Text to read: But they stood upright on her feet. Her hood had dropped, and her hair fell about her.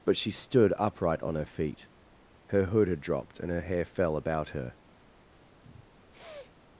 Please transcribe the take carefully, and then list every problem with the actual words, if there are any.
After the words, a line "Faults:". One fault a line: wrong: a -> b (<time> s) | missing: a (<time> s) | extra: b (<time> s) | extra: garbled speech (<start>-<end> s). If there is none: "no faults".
But she stood upright on her feet. Her hood had dropped, and her hair fell about her.
Faults:
wrong: they -> she (0.2 s)